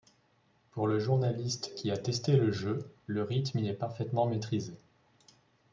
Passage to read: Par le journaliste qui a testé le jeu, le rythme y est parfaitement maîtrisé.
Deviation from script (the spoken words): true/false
true